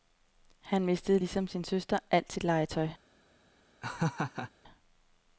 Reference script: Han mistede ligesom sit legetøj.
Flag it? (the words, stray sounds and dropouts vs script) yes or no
yes